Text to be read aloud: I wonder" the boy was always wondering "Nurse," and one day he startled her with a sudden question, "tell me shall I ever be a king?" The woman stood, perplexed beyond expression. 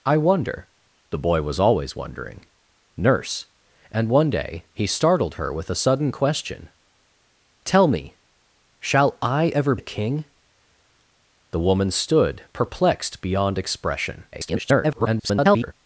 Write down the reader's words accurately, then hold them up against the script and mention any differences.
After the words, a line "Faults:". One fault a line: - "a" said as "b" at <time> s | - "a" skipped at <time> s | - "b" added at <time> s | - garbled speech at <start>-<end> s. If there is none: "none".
I wonder" the boy was always wondering "Nurse," and one day he startled her with a sudden question, "tell me shall I ever a king?" The woman stood, perplexed beyond expression. [garbled]
Faults:
- "be" skipped at 9.8 s
- garbled speech at 14.3-15.7 s